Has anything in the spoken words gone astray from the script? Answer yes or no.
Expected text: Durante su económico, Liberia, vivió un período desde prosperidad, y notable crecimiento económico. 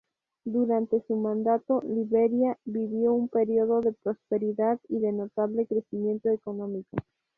yes